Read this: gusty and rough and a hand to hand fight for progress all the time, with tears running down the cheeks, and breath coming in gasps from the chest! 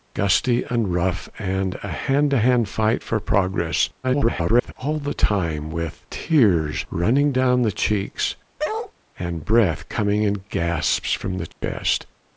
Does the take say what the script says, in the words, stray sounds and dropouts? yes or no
no